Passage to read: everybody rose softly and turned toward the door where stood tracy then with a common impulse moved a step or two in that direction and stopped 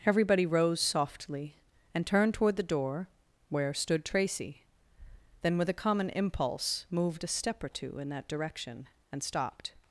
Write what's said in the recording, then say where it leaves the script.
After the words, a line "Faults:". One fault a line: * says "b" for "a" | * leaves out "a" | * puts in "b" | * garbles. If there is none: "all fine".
everybody rose softly and turned toward the door where stood tracy then with a common impulse moved a step or two in that direction and stopped
Faults:
all fine